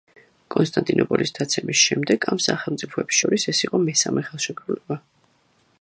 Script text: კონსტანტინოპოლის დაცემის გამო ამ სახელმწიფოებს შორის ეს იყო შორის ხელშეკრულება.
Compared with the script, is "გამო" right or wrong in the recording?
wrong